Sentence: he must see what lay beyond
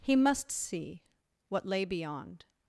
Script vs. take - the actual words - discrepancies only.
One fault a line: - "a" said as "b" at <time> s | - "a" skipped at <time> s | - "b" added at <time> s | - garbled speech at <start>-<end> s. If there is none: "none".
none